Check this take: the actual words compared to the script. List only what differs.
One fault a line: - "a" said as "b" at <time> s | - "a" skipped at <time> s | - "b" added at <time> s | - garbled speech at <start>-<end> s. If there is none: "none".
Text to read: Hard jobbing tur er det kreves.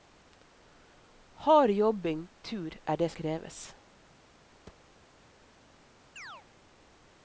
none